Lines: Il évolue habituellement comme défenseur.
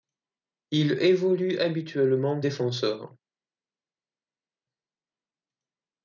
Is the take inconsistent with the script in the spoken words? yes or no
yes